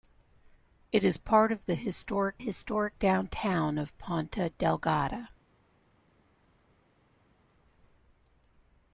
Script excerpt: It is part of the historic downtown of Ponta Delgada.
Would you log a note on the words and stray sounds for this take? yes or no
yes